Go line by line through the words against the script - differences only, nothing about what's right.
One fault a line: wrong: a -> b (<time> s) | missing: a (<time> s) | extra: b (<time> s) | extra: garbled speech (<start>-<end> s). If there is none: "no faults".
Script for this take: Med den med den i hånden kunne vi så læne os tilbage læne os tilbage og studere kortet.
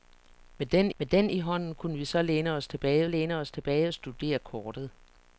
no faults